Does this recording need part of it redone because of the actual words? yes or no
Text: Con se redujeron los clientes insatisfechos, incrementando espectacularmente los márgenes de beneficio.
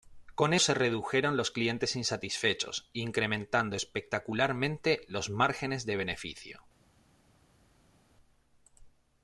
no